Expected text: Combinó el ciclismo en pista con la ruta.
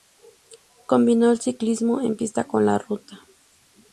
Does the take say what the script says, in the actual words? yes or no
yes